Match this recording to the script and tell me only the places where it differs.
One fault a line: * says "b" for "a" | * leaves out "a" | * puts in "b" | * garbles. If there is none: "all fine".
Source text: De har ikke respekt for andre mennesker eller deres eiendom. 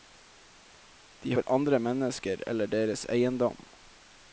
* leaves out "har ikke respekt"